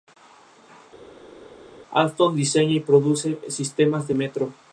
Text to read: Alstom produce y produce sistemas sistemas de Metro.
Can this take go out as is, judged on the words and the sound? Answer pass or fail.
fail